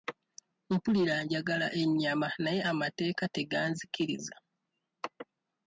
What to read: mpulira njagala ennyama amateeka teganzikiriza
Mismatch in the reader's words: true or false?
true